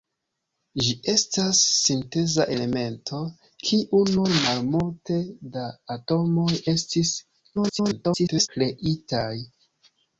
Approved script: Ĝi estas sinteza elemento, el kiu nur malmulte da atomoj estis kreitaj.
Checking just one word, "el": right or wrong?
wrong